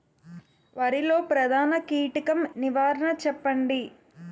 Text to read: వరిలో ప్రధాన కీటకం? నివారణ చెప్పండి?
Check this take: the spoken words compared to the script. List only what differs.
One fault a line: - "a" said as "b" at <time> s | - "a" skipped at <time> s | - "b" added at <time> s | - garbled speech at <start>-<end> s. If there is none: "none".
none